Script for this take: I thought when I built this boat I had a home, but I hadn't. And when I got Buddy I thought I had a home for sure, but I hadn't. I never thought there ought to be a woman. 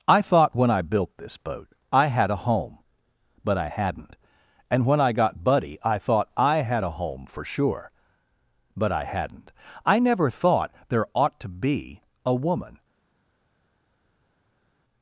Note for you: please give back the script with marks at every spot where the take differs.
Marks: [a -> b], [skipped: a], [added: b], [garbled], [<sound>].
I thought when I built this boat I had a home, but I hadn't. And when I got Buddy I thought I had a home for sure, but I hadn't. I never thought there ought to be a woman.